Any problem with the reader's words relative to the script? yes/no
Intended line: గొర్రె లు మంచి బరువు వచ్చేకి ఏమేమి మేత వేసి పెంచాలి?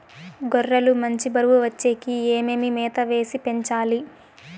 no